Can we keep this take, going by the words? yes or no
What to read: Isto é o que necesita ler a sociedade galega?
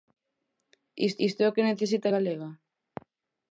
no